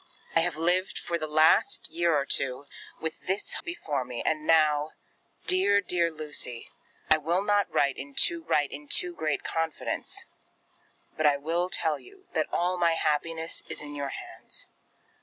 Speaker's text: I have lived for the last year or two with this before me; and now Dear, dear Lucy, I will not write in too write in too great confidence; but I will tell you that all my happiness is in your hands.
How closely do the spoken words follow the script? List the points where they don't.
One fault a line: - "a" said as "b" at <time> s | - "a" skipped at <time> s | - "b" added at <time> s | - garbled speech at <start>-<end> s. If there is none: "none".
none